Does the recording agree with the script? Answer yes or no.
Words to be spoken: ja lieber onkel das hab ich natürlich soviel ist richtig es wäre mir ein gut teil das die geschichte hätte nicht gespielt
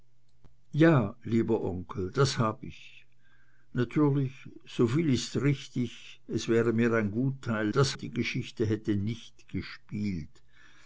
yes